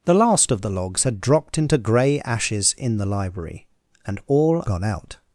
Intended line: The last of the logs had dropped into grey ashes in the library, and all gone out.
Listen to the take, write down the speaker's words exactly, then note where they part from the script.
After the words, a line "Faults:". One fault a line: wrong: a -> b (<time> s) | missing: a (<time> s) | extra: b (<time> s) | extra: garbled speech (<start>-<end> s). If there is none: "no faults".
The last of the logs had dropped into grey ashes in the library, and all gone out.
Faults:
no faults